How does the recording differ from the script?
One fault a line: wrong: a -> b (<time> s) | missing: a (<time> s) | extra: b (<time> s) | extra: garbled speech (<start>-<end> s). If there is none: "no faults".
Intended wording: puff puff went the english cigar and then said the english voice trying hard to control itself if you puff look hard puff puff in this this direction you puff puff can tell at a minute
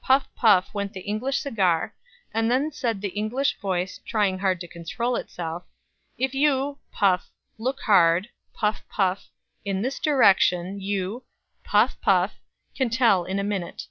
missing: this (10.0 s)
wrong: at -> in (13.2 s)